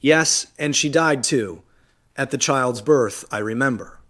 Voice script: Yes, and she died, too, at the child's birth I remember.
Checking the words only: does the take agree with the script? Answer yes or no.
yes